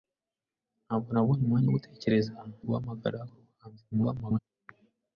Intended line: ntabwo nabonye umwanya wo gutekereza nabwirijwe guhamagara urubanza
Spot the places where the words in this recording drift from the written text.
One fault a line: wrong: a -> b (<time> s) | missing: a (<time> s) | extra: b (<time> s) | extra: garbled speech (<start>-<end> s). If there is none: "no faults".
missing: nabwirijwe (2.3 s)
extra: garbled speech (3.9-4.4 s)